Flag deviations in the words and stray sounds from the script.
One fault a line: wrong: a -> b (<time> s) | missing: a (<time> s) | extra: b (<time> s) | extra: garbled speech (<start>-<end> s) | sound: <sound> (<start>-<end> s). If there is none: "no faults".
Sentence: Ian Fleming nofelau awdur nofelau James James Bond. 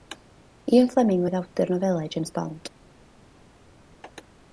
wrong: nofelau -> oedd (1.2 s)
missing: James (2.4 s)